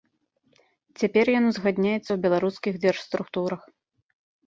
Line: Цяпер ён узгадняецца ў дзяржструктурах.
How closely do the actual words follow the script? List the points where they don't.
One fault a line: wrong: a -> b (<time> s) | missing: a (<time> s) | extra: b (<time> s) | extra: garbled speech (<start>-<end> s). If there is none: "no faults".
extra: беларускіх (2.3 s)